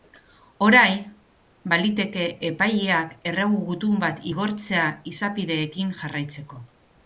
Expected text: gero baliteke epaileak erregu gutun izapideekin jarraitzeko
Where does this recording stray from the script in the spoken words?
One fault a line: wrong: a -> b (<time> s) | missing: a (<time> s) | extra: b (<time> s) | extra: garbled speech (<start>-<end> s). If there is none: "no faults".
wrong: gero -> orain (0.7 s)
extra: bat igortzea (4.1 s)